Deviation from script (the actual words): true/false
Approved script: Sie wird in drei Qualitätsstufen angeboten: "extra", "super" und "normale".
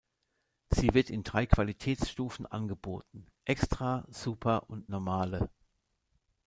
false